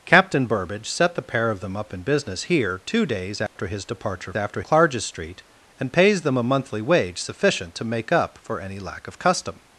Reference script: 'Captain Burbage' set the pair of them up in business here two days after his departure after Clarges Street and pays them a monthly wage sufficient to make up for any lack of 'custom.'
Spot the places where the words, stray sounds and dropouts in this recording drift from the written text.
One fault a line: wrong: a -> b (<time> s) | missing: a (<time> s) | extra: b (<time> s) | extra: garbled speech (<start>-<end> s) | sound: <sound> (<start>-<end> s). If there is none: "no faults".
sound: dropout (3.5-3.6 s)